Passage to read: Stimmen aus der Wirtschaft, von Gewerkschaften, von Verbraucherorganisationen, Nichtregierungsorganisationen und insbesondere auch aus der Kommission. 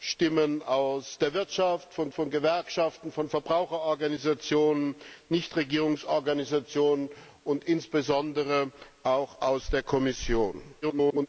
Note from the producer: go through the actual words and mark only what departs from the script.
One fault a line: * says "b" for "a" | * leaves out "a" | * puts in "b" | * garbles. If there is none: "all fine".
* puts in "von"
* garbles